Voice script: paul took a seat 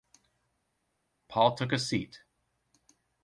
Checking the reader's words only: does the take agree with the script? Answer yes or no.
yes